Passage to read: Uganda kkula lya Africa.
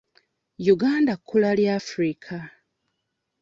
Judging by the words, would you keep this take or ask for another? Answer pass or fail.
pass